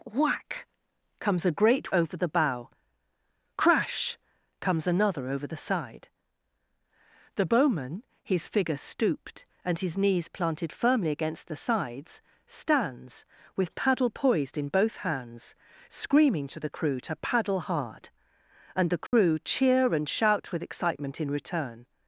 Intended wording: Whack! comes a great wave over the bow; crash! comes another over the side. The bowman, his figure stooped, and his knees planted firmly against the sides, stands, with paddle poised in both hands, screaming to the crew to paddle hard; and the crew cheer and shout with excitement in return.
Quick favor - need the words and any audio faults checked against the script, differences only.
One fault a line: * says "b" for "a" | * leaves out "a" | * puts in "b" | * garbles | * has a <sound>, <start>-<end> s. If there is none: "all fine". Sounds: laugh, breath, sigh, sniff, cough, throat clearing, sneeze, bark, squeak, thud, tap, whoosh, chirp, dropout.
* leaves out "wave"
* has a dropout, 19.1-19.1 s